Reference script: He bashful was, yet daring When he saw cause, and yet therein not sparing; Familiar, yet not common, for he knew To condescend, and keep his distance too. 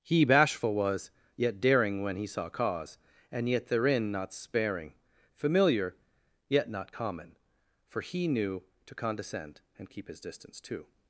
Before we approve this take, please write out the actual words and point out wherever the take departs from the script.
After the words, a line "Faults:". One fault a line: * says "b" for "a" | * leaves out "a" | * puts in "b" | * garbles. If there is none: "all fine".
He bashful was, yet daring When he saw cause, and yet therein not sparing; Familiar, yet not common, for he knew To condescend, and keep his distance too.
Faults:
all fine